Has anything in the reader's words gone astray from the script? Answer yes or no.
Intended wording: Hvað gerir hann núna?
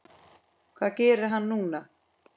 no